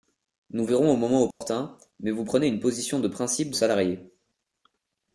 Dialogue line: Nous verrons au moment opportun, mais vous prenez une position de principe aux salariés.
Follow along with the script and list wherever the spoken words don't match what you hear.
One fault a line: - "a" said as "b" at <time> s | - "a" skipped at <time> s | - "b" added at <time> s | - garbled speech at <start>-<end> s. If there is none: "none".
none